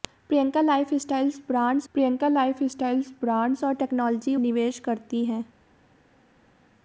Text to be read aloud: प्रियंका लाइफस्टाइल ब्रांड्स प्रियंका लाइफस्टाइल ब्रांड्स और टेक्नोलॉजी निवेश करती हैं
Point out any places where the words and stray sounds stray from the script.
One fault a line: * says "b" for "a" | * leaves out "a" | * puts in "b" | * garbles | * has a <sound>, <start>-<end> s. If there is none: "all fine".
all fine